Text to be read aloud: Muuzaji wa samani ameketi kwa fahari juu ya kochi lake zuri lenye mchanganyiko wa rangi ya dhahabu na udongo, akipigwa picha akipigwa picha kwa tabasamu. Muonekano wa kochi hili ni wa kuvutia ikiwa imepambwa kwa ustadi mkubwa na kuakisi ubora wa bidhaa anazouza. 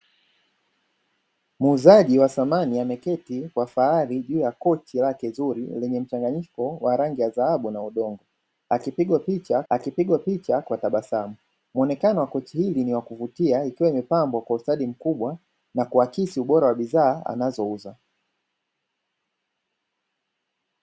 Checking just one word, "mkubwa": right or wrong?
right